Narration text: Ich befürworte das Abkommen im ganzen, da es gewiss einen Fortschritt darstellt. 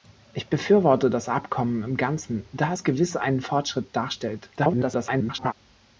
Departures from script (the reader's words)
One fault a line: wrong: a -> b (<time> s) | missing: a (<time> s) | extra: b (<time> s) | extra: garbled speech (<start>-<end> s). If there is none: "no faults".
extra: garbled speech (4.6-5.5 s)